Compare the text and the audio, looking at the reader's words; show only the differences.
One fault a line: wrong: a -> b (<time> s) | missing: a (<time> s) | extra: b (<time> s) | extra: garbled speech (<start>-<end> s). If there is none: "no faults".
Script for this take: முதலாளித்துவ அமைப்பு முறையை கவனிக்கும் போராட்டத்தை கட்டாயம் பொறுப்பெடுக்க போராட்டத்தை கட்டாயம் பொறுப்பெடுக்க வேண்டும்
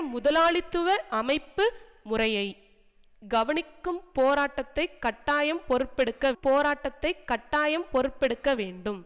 no faults